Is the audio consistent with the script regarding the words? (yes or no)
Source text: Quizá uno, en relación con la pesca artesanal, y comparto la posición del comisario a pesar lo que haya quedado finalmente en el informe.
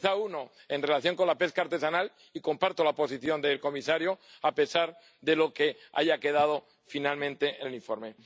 no